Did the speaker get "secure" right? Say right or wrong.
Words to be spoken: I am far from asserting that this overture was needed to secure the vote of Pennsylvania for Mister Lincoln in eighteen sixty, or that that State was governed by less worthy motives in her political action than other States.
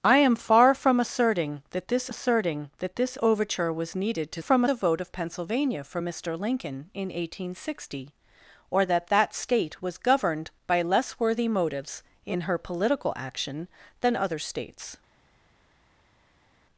wrong